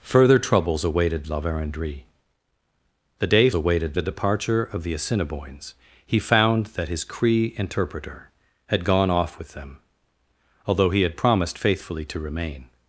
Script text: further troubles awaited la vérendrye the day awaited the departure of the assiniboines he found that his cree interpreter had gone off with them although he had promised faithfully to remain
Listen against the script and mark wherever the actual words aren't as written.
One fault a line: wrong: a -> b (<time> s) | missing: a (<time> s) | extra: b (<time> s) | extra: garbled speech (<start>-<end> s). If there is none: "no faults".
no faults